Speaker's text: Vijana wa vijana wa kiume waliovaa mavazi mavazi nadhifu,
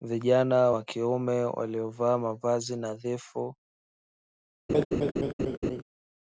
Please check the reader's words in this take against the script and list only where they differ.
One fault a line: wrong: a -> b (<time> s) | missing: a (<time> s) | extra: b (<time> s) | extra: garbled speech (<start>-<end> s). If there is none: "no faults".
missing: vijana wa (0.8 s)
missing: mavazi (2.8 s)